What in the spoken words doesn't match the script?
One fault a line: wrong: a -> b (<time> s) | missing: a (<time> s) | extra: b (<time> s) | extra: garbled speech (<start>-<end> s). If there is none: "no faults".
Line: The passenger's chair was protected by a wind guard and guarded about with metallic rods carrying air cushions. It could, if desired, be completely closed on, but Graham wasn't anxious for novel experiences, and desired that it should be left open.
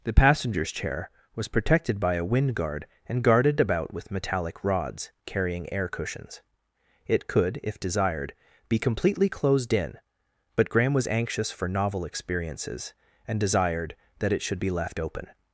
wrong: on -> in (9.7 s)
wrong: wasn't -> was (10.9 s)